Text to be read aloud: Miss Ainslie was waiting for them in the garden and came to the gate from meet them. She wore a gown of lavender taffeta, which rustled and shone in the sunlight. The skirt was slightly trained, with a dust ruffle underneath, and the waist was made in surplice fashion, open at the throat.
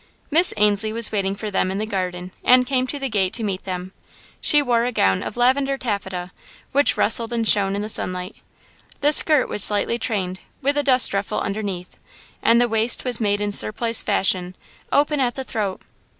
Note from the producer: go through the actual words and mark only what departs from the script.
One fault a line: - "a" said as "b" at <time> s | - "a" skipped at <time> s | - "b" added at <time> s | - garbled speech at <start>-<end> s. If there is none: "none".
- "from" said as "to" at 3.3 s